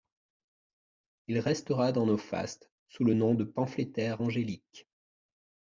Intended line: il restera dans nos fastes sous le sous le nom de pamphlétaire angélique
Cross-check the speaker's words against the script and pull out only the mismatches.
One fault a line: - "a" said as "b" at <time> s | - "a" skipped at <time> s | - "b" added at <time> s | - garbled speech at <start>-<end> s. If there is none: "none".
- "sous le" skipped at 3.1 s